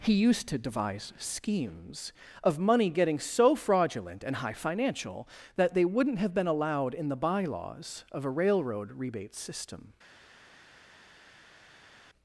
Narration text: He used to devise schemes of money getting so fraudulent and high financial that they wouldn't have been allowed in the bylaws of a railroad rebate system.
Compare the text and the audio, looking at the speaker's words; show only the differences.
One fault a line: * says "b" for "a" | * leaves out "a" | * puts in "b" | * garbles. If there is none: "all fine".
all fine